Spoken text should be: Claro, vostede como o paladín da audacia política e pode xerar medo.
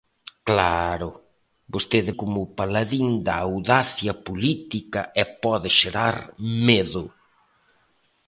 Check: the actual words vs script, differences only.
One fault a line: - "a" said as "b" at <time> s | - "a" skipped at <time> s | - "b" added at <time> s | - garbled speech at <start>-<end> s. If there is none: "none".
none